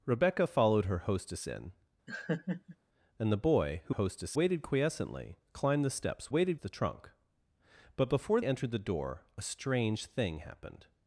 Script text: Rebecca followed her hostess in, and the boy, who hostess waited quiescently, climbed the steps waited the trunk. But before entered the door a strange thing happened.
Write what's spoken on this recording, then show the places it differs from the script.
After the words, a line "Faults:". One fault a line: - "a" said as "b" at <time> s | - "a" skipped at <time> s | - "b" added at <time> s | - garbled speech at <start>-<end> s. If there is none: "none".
Rebecca followed her hostess in, and the boy, who hostess waited quiescently, climbed the steps waited the trunk. But before entered the door a strange thing happened.
Faults:
none